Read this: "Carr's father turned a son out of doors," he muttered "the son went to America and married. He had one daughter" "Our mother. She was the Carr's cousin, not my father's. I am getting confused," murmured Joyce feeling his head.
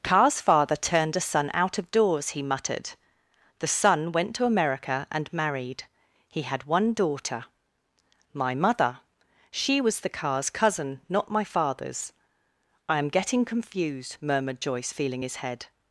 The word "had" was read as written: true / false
true